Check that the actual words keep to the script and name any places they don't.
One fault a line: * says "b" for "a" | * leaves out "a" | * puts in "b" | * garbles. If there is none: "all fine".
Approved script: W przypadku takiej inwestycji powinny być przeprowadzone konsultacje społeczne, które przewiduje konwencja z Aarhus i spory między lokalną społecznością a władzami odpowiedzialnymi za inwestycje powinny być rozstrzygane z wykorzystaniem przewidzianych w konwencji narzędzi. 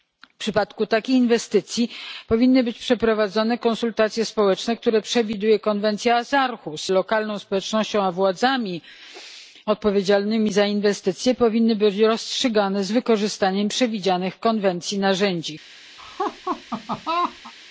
* leaves out "i spory między"